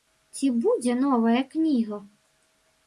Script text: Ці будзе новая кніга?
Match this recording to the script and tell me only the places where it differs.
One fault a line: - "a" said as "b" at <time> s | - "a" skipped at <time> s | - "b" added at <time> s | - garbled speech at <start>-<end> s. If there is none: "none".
none